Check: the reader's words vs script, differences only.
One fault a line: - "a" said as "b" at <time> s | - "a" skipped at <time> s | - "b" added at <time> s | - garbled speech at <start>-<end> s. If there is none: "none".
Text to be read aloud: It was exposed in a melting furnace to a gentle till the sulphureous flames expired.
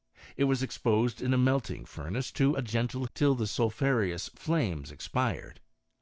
none